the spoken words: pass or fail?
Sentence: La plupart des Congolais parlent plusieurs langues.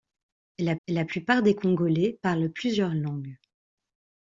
fail